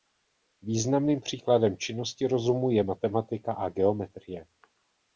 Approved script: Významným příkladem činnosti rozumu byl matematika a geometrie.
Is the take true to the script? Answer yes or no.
no